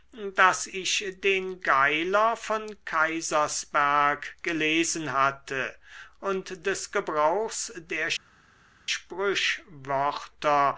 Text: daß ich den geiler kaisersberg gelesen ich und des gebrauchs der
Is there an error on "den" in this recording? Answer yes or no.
no